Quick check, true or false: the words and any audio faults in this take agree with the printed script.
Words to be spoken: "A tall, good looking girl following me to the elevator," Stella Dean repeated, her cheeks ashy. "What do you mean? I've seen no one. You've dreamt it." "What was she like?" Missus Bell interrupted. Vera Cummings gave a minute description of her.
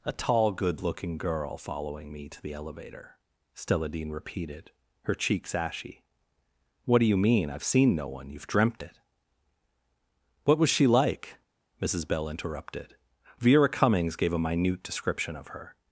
true